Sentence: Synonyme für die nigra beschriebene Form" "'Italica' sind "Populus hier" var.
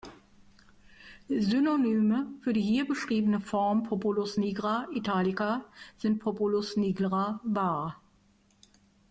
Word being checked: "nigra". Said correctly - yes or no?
no